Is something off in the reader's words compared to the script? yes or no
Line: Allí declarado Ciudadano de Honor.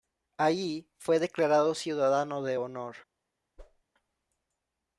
yes